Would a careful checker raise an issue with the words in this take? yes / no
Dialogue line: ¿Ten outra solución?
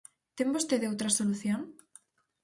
yes